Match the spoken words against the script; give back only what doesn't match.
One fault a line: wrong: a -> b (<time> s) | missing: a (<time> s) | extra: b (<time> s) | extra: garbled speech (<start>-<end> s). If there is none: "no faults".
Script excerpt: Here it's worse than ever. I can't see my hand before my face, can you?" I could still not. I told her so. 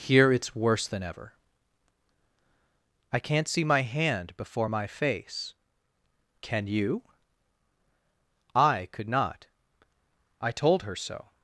missing: still (9.1 s)